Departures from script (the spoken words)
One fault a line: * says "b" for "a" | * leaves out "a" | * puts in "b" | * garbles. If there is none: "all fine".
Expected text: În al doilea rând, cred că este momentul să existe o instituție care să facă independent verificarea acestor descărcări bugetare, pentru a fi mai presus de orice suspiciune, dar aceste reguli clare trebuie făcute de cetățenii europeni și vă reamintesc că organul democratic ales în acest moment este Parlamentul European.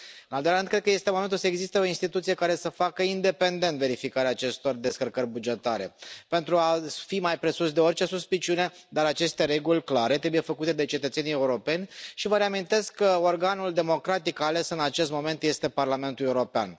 all fine